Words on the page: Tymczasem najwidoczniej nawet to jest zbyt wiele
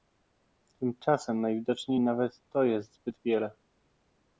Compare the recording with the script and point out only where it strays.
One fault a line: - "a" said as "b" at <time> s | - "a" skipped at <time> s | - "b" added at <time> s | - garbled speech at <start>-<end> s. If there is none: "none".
none